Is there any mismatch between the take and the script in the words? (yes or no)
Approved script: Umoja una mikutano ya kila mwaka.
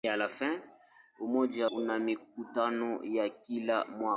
no